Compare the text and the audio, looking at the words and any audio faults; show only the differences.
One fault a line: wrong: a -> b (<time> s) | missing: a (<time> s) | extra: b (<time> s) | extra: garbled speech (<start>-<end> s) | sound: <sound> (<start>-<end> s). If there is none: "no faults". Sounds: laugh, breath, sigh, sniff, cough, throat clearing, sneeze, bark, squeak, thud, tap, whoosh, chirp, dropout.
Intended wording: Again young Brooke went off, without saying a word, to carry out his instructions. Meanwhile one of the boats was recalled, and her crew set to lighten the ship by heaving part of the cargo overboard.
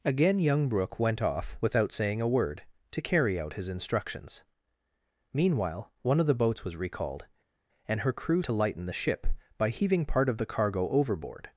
missing: set (8.4 s)